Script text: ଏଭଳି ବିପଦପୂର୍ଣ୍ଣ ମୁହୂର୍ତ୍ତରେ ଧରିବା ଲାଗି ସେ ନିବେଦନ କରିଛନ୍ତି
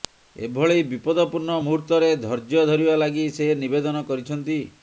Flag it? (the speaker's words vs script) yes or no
yes